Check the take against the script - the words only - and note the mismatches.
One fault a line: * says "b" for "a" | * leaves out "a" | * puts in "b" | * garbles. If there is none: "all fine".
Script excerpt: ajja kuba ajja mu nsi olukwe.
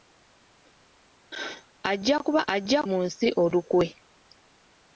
all fine